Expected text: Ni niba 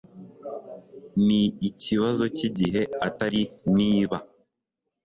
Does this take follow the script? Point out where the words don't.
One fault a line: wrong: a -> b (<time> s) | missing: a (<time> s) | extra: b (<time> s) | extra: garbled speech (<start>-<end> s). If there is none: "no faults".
extra: ikibazo cyigihe atari (1.7 s)